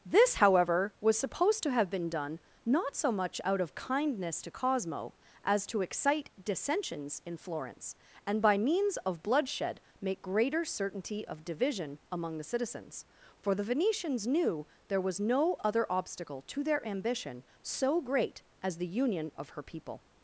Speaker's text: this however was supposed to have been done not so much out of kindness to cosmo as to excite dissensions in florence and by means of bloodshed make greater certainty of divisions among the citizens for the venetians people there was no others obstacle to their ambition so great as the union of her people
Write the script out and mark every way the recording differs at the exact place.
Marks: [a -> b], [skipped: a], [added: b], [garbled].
this however was supposed to have been done not so much out of kindness to cosmo as to excite dissensions in florence and by means of bloodshed make greater certainty of [divisions -> division] among the citizens for the venetians [people -> knew] there was no [others -> other] obstacle to their ambition so great as the union of her people